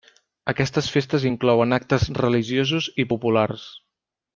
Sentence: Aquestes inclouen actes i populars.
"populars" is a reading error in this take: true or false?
false